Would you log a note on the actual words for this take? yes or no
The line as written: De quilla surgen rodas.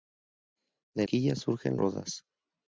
no